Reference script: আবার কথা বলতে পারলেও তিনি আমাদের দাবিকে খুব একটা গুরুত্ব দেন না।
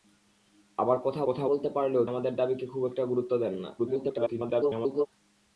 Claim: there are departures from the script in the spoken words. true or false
true